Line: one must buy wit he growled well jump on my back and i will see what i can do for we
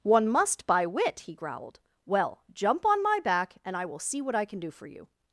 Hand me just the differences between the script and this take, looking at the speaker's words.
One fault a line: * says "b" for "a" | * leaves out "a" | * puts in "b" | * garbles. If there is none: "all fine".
* says "you" for "we"